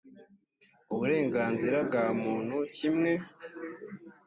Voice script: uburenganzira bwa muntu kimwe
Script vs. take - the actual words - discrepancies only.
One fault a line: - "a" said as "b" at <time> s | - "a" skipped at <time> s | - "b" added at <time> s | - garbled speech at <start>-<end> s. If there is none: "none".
none